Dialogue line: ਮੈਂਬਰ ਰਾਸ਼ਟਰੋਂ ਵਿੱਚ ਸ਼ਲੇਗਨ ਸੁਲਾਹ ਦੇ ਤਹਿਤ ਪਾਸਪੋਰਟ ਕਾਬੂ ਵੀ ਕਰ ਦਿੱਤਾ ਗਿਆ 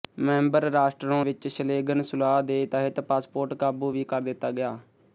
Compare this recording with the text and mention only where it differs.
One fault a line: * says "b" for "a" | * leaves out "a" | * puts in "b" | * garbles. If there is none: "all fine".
all fine